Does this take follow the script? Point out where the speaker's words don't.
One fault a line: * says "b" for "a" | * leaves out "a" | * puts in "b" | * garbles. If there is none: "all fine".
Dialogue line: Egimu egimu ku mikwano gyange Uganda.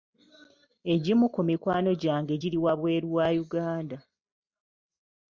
* leaves out "egimu"
* puts in "giri wabweru wa"